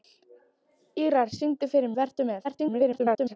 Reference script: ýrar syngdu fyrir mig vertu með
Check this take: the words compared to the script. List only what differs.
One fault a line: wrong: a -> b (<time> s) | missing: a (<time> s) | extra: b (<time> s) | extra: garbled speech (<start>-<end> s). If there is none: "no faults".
missing: mig (1.9 s)
extra: garbled speech (2.4-3.4 s)